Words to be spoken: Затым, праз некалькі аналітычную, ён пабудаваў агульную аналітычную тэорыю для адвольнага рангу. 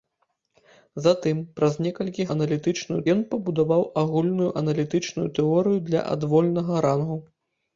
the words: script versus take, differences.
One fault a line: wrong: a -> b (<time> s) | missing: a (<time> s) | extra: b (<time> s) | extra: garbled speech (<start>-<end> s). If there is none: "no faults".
no faults